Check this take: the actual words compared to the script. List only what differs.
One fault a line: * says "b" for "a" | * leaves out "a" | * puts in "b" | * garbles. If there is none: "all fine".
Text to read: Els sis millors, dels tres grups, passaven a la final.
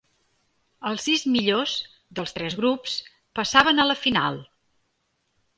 all fine